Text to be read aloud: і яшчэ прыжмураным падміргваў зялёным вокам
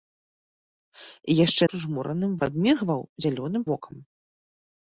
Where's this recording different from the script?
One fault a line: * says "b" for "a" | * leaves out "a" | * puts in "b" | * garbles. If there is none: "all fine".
all fine